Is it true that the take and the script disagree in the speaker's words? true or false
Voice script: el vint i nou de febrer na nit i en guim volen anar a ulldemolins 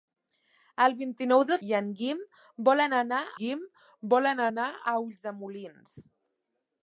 true